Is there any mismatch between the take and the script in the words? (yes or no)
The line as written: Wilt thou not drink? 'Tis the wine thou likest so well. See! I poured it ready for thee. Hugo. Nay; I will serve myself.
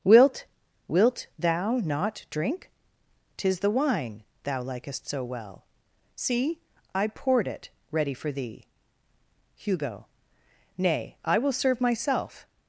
yes